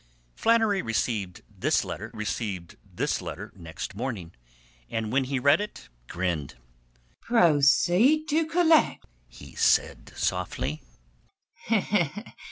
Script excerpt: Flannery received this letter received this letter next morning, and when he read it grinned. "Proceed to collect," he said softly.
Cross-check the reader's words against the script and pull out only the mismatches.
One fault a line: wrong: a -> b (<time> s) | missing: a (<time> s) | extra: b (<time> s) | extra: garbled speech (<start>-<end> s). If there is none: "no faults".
no faults